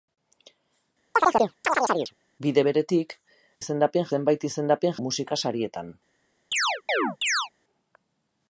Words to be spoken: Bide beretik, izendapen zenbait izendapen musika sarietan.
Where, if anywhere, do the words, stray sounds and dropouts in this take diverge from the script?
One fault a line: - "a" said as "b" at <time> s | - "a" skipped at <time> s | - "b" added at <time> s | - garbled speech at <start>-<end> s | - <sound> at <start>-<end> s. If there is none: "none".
- chirp at 1.1-2.1 s
- chirp at 6.5-7.5 s